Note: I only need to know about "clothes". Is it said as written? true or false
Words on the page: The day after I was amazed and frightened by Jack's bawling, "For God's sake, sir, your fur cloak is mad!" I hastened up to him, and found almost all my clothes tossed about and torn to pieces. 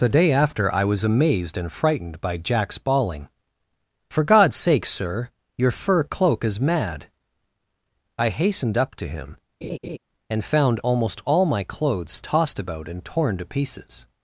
true